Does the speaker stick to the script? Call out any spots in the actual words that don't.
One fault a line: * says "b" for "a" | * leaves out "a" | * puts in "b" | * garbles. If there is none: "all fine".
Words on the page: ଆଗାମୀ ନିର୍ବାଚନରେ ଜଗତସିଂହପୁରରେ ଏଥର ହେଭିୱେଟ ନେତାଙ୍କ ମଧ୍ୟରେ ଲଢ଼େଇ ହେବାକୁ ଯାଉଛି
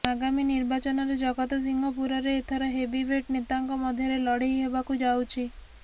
all fine